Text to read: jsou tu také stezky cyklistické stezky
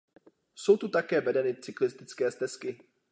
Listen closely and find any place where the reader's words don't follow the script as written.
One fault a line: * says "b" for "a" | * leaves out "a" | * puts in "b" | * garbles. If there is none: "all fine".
* says "vedeny" for "stezky"